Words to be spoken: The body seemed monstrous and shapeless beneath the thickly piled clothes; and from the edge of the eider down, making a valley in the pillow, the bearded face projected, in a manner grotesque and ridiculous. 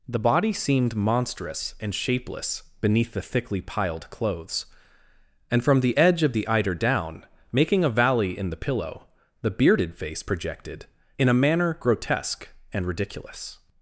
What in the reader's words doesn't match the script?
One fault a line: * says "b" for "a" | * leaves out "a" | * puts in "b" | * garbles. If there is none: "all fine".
all fine